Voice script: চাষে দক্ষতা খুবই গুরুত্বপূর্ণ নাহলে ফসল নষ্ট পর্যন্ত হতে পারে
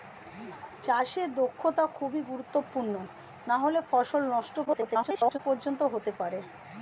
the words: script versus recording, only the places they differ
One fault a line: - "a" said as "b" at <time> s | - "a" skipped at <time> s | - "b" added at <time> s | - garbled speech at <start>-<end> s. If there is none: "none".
- garbled speech at 4.7-5.4 s